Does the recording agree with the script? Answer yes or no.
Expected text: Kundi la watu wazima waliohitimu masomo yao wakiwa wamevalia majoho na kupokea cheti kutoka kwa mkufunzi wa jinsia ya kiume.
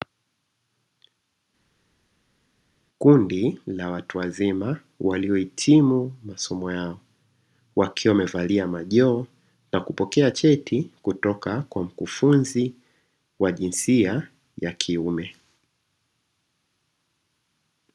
yes